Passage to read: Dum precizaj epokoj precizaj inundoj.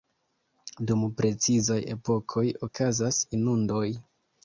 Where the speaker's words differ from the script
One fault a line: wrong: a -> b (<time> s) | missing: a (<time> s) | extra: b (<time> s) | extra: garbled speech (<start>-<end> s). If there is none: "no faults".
wrong: precizaj -> okazas (2.7 s)